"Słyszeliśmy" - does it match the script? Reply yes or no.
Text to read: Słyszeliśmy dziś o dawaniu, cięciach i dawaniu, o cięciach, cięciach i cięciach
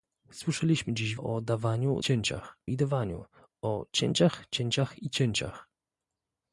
yes